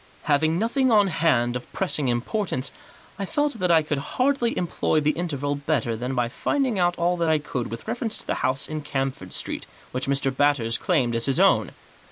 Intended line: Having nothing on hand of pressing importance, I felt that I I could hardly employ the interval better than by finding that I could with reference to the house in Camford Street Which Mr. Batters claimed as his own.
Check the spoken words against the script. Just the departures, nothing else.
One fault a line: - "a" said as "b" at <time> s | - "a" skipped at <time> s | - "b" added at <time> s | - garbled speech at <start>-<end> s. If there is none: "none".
- "I" skipped at 3.8 s
- "out all" added at 6.8 s